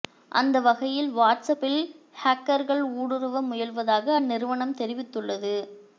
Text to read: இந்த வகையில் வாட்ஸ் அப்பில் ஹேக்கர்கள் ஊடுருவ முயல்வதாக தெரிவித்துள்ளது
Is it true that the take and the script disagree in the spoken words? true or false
true